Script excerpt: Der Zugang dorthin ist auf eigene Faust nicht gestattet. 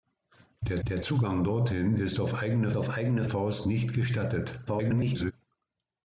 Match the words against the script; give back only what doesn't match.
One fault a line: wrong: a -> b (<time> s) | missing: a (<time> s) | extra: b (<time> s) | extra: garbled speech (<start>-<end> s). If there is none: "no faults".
extra: der (0.9 s)
extra: auf eigene (2.7 s)
extra: garbled speech (4.7-5.3 s)